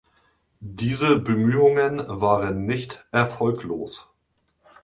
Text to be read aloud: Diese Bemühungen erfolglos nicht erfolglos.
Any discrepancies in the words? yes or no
yes